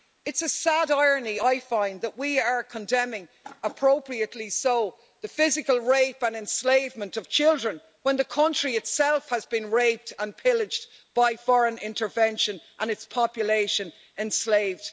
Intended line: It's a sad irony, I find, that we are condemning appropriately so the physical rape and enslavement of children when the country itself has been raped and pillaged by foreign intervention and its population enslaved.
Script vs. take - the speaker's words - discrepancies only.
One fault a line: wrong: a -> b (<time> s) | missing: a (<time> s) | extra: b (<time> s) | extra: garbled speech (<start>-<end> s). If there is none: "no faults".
no faults